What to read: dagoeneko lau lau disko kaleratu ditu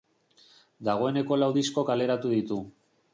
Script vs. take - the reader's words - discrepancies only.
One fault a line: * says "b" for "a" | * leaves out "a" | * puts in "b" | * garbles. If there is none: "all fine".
* leaves out "lau"